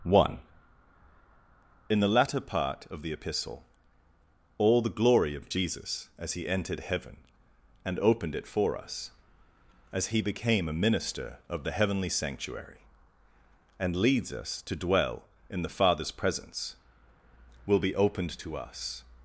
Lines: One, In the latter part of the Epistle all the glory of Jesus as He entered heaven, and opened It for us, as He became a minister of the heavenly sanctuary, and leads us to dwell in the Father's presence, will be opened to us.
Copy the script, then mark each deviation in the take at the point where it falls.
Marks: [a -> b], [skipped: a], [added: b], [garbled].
One, In the latter part of the Epistle all the glory of Jesus as He entered heaven, and opened It for us, as He became a minister of the heavenly sanctuary, and leads us to dwell in the Father's presence, will be opened to us.